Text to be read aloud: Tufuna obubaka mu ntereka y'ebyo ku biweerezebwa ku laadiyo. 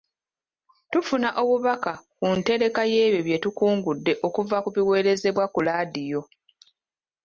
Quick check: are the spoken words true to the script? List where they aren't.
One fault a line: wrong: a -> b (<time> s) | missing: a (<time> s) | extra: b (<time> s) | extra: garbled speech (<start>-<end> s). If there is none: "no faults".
wrong: mu -> ku (2.2 s)
extra: bye tukungudde okuva (3.3 s)